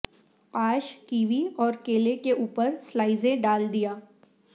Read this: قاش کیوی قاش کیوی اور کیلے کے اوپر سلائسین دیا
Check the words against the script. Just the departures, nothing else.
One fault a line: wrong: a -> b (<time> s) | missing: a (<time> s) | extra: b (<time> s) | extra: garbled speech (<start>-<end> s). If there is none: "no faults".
missing: قاش کیوی (1.4 s)
extra: ڈال (3.4 s)